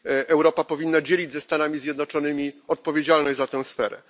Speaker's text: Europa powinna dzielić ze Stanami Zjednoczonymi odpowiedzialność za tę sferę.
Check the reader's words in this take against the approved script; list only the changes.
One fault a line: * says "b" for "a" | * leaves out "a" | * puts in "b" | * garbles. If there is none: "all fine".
all fine